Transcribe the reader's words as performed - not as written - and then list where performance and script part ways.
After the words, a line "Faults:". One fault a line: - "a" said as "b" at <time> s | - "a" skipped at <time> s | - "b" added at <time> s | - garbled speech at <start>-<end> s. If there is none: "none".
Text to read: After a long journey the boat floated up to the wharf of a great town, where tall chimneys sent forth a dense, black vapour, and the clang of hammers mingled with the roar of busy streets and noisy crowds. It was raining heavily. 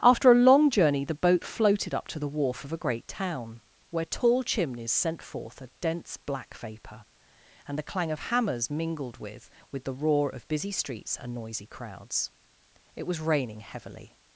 After a long journey the boat floated up to the wharf of a great town, where tall chimneys sent forth a dense, black vapour, and the clang of hammers mingled with with the roar of busy streets and noisy crowds. It was raining heavily.
Faults:
- "with" added at 9.7 s